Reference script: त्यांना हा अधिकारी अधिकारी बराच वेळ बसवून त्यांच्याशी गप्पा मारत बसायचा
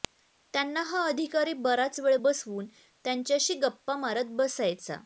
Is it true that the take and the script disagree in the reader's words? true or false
true